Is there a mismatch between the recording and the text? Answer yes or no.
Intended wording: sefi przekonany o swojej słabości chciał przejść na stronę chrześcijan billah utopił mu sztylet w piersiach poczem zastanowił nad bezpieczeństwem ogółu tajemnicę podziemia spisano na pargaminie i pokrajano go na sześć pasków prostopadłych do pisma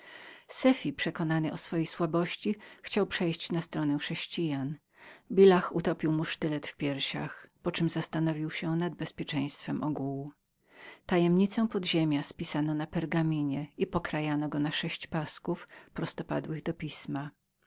yes